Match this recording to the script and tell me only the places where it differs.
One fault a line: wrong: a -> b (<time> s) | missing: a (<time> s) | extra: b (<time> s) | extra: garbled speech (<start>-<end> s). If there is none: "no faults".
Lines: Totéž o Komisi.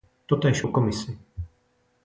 no faults